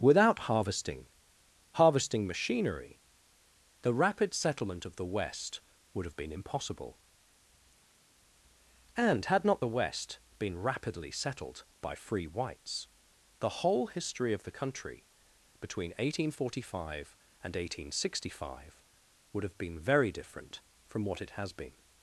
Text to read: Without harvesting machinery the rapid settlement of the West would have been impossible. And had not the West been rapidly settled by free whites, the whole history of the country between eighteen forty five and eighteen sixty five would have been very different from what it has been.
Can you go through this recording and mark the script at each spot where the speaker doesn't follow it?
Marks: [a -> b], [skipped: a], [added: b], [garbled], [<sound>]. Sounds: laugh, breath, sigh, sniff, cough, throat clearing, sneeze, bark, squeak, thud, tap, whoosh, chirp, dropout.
Without harvesting [added: harvesting] machinery the rapid settlement of the West would have been impossible. And had not the West been rapidly settled by free whites, the whole history of the country between eighteen forty five and eighteen sixty five would have been very different from what it has been.